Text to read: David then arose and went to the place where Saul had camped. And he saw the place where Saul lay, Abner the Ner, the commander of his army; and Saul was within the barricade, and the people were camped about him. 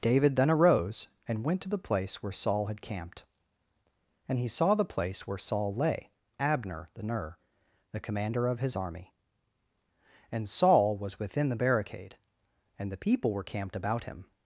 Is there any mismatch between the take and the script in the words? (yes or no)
no